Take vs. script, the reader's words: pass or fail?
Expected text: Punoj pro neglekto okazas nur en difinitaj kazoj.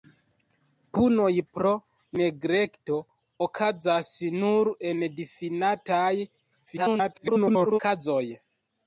fail